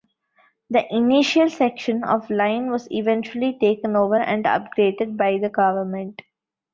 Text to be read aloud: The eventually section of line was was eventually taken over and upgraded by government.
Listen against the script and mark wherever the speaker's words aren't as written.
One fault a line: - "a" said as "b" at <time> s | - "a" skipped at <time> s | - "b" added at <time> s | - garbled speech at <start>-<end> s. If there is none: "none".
- "eventually" said as "initial" at 0.9 s
- "was" skipped at 2.9 s
- "the" added at 5.4 s